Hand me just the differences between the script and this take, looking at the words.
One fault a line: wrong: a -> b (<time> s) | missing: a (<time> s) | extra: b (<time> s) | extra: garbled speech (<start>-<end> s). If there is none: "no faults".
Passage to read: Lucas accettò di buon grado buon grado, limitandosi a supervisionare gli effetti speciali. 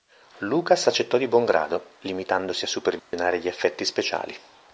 missing: buon grado (1.9 s)